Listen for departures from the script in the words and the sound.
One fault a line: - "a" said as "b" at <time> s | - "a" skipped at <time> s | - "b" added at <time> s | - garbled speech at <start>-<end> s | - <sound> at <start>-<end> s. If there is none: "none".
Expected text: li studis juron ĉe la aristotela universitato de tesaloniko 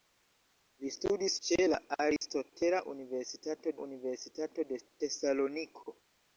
- "juron" skipped at 1.3 s
- dropout at 2.2-2.2 s
- "universitato" added at 3.8 s